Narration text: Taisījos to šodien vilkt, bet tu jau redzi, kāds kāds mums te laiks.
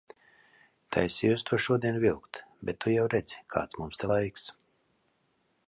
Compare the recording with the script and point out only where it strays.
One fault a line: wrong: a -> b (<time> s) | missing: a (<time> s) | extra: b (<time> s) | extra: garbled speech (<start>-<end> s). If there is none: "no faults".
missing: kāds (3.8 s)